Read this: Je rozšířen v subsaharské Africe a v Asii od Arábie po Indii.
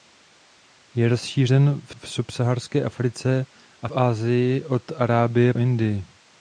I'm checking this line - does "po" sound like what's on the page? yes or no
no